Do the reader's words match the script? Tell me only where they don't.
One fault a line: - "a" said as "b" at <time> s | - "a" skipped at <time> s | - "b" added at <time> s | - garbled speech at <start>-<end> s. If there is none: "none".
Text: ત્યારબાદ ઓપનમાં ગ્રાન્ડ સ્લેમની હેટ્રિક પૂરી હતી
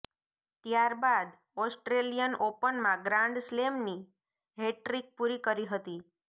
- "ઓસ્ટ્રેલિયન" added at 1.6 s
- "કરી" added at 5.4 s